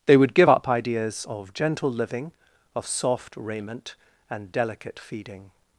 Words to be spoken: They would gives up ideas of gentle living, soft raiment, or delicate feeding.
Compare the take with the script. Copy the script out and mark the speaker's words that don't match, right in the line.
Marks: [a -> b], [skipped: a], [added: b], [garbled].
They would [gives -> give] up ideas of gentle living, [added: of] soft raiment, [or -> and] delicate feeding.